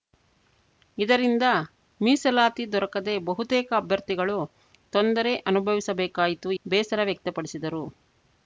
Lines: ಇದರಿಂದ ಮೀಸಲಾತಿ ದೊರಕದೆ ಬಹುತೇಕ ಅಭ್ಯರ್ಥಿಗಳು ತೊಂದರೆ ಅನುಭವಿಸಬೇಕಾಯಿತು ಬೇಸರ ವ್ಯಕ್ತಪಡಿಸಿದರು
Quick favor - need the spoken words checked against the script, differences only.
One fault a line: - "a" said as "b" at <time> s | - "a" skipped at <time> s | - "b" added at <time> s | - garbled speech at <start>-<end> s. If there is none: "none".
none